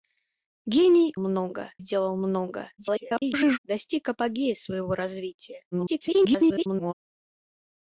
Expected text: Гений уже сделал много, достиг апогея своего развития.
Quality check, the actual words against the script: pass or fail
fail